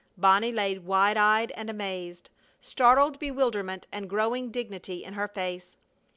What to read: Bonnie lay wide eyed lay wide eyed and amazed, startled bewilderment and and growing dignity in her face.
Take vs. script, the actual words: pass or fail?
fail